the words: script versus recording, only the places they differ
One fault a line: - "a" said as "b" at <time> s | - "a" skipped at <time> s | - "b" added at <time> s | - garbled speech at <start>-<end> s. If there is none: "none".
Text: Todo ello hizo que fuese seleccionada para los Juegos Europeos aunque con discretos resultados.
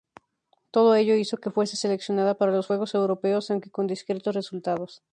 none